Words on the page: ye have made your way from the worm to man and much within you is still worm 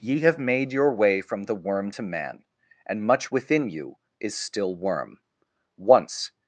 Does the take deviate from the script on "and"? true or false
false